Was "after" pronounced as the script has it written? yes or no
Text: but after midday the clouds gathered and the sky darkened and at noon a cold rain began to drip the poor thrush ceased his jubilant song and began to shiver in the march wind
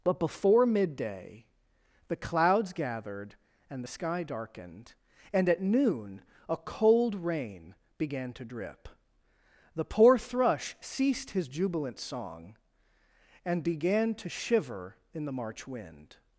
no